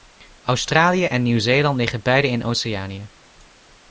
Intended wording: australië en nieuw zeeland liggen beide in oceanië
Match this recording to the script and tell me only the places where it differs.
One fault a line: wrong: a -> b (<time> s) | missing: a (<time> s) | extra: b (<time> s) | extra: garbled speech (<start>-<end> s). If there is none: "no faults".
no faults